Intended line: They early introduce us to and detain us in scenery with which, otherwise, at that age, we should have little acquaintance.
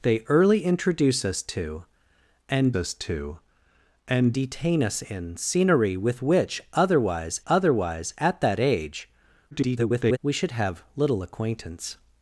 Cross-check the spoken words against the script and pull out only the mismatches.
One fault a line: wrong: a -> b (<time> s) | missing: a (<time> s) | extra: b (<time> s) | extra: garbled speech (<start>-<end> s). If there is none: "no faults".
extra: us to and (2.7 s)
extra: otherwise (7.5 s)
extra: garbled speech (9.5-10.2 s)